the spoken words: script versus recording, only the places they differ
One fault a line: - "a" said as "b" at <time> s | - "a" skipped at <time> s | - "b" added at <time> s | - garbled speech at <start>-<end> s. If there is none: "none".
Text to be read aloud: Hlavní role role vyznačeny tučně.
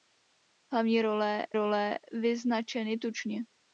none